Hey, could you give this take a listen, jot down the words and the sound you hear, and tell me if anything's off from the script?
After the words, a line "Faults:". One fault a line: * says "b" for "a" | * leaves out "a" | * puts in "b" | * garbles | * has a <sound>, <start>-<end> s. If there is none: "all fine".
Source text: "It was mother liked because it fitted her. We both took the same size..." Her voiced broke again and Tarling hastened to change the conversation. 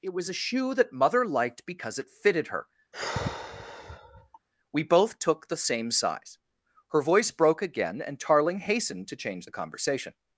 "It was a shoe that mother liked because it fitted her. We both took the same size..." Her voice broke again and Tarling hastened to change the conversation.
Faults:
* puts in "a shoe that"
* has a sigh, 2.9-4.4 s
* says "voice" for "voiced"